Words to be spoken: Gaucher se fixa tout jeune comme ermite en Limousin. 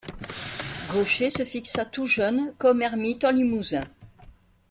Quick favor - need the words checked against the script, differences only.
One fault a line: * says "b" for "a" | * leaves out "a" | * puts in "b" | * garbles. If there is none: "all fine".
all fine